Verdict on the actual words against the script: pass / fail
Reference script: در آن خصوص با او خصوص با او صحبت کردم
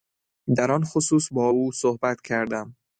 fail